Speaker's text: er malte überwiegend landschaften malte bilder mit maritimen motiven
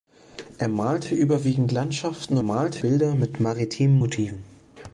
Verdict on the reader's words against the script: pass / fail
pass